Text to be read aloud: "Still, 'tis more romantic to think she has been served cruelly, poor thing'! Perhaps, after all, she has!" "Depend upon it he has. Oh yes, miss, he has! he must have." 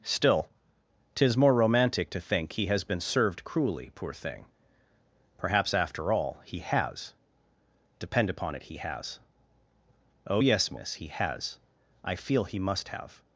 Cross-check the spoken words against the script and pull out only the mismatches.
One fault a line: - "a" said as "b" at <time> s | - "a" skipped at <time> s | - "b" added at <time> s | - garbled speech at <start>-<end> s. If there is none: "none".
- "she" said as "he" at 2.5 s
- "she" said as "he" at 6.4 s
- "I feel" added at 12.0 s